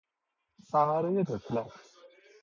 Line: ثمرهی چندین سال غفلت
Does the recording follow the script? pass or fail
fail